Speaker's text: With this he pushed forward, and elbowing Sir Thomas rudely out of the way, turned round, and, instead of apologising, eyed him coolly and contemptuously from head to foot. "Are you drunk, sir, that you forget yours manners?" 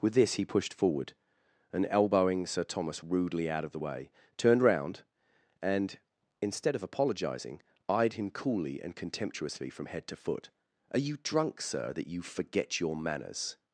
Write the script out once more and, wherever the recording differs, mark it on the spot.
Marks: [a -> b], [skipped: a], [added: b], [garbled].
With this he pushed forward, and elbowing Sir Thomas rudely out of the way, turned round, and, instead of apologising, eyed him coolly and contemptuously from head to foot. "Are you drunk, sir, that you forget [yours -> your] manners?"